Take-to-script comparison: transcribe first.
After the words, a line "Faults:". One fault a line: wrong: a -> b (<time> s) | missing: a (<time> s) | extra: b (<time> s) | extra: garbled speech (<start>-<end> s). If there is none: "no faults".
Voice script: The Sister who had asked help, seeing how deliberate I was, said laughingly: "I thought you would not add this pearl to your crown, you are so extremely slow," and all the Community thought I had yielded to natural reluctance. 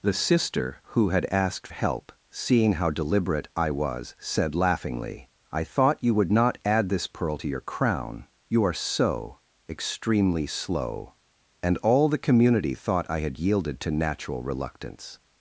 The Sister who had asked help, seeing how deliberate I was, said laughingly: "I thought you would not add this pearl to your crown, you are so extremely slow," and all the Community thought I had yielded to natural reluctance.
Faults:
no faults